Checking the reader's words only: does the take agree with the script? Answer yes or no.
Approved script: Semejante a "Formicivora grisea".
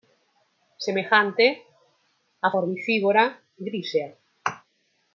yes